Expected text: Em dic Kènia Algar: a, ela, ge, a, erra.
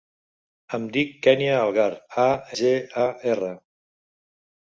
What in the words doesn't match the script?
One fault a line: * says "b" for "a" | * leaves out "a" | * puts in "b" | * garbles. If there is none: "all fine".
* leaves out "ela"